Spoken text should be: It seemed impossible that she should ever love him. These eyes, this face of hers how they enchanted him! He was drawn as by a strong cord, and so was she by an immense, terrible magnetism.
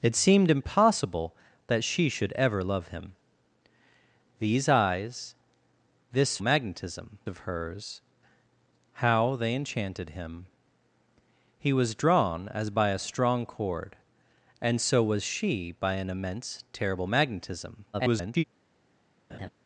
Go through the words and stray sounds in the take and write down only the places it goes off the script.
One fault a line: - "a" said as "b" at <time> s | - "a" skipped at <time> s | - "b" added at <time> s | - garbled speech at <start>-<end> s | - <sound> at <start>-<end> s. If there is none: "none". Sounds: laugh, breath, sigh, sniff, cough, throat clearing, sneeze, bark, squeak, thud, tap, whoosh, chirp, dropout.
- "face" said as "magnetism" at 6.4 s
- garbled speech at 17.9-18.4 s
- laugh at 19.3-19.5 s